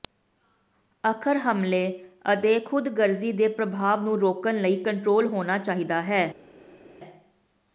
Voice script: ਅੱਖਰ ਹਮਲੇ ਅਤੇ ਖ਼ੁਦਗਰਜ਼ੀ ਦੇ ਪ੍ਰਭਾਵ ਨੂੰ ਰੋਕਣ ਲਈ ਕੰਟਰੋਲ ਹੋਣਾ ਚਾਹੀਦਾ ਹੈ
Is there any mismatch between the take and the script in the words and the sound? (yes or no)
no